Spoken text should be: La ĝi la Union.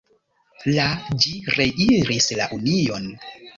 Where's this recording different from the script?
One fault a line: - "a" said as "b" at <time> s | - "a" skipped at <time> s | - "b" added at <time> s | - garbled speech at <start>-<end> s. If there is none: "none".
- "reiris" added at 1.6 s